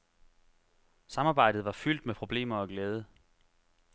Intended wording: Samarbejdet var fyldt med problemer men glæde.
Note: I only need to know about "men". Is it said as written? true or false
false